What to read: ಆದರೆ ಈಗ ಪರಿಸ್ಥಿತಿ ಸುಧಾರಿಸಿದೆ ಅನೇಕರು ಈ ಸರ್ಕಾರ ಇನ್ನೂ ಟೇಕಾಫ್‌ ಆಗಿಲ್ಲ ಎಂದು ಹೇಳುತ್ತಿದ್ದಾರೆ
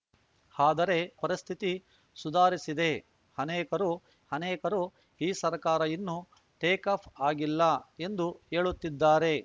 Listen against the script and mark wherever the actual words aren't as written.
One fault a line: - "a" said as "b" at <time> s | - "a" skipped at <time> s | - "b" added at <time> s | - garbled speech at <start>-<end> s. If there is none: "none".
- "ಈಗ" skipped at 1.0 s
- "ಅನೇಕರು" added at 4.3 s